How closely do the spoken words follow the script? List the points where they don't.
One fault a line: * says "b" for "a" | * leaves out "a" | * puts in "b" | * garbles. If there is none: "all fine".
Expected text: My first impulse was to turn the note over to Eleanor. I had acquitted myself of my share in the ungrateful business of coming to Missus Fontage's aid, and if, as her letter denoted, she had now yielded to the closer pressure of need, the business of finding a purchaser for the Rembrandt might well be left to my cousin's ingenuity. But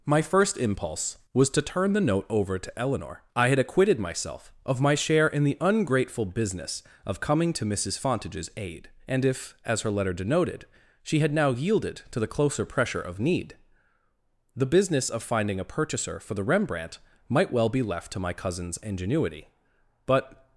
all fine